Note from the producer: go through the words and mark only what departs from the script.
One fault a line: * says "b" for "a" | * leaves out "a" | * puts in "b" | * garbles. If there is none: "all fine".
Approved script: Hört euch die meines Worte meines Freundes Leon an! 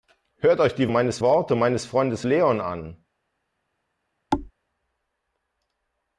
all fine